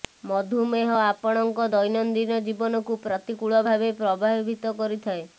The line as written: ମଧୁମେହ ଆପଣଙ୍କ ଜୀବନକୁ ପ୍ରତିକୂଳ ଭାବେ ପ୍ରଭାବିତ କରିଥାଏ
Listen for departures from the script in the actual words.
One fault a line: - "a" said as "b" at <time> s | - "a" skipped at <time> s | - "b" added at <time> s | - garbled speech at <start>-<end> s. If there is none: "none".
- "ଦୈନନ୍ଦିନ" added at 1.7 s